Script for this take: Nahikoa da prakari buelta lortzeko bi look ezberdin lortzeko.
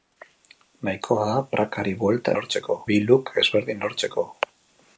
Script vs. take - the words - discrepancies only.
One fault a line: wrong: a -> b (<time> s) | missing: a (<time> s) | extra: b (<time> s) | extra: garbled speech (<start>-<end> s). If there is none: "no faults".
no faults